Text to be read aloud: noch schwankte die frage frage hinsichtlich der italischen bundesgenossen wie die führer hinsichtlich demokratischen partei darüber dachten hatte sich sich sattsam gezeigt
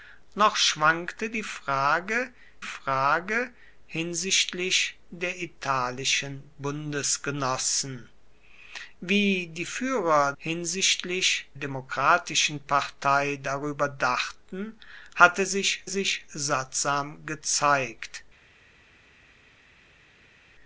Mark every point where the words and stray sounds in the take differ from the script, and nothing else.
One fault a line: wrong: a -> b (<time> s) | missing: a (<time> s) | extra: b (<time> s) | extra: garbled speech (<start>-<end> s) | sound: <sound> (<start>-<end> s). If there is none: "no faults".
no faults